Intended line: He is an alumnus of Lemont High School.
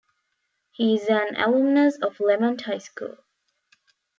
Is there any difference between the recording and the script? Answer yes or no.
no